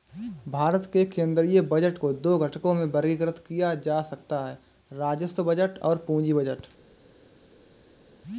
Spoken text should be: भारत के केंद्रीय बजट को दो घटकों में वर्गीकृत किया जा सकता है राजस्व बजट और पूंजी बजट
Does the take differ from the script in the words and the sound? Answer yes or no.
no